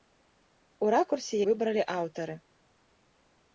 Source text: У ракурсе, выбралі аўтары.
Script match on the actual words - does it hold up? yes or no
yes